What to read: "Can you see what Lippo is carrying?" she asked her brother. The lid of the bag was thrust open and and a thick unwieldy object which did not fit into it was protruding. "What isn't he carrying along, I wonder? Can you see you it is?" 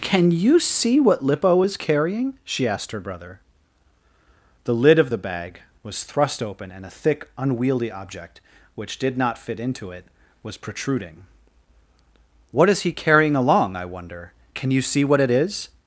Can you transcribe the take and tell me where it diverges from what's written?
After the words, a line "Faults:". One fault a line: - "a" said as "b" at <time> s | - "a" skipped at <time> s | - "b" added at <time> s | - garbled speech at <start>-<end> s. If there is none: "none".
"Can you see what Lippo is carrying?" she asked her brother. The lid of the bag was thrust open and a thick unwieldy object which did not fit into it was protruding. "What is he carrying along, I wonder? Can you see what it is?"
Faults:
- "and" skipped at 6.9 s
- "isn't" said as "is" at 12.7 s
- "you" said as "what" at 15.0 s